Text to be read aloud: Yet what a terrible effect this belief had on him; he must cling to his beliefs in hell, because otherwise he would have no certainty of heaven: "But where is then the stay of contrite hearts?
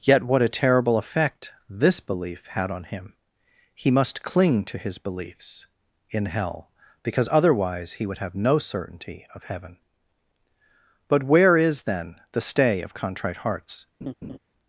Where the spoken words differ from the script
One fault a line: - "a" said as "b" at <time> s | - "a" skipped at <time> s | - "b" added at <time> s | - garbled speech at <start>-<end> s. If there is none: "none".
none